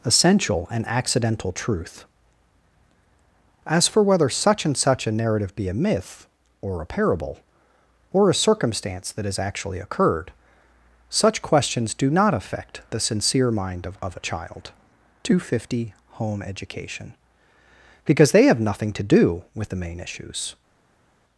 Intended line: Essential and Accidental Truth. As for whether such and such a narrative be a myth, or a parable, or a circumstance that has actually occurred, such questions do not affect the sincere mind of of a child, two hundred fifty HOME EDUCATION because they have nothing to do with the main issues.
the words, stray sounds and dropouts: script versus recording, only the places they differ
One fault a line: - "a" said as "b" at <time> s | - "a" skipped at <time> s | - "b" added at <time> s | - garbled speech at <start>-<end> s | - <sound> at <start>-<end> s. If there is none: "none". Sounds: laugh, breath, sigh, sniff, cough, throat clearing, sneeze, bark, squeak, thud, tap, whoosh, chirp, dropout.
none